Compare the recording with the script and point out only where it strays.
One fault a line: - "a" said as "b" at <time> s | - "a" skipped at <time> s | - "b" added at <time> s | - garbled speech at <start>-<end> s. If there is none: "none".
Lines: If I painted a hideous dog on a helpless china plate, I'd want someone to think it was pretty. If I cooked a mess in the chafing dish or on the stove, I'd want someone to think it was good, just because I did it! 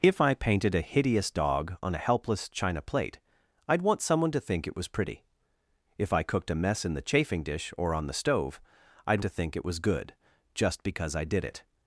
- "want someone" skipped at 9.2 s